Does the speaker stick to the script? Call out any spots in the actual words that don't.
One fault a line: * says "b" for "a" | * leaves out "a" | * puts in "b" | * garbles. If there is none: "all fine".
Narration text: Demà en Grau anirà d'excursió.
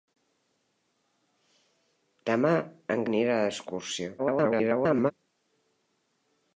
* leaves out "Grau"
* garbles